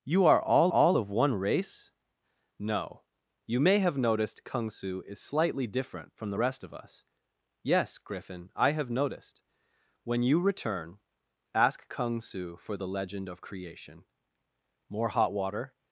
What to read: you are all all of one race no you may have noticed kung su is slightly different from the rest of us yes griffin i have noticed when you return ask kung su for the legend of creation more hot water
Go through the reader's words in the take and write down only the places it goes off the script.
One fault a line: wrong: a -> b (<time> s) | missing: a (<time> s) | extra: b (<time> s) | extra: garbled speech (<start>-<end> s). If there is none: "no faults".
no faults